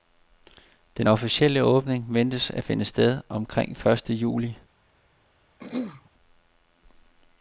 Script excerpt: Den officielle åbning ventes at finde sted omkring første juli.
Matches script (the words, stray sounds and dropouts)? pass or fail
fail